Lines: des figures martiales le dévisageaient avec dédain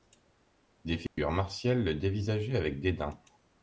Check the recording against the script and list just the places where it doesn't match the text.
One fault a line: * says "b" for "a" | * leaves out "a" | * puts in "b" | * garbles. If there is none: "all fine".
all fine